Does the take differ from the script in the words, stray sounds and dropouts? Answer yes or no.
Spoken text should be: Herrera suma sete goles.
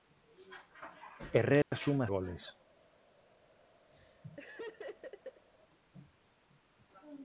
yes